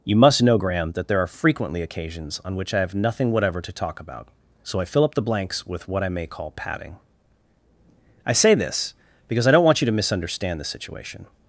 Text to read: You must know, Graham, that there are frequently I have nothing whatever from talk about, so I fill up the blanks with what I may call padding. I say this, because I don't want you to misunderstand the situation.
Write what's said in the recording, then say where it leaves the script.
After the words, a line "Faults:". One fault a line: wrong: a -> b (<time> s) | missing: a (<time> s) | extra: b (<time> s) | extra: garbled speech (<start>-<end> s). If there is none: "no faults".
You must know, Graham, that there are frequently occasions on which I have nothing whatever to talk about, so I fill up the blanks with what I may call padding. I say this, because I don't want you to misunderstand the situation.
Faults:
extra: occasions on which (1.8 s)
wrong: from -> to (3.6 s)